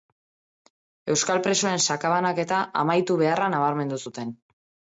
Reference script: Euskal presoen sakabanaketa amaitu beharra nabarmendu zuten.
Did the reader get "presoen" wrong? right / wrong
right